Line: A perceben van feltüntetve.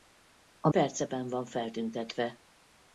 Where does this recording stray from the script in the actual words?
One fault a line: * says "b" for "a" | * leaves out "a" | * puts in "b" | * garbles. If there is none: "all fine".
all fine